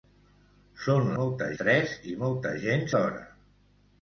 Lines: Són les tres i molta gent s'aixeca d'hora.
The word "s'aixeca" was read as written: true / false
false